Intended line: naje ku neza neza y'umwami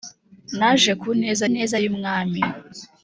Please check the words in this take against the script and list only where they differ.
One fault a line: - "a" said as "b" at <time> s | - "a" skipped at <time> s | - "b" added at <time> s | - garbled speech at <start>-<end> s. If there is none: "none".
none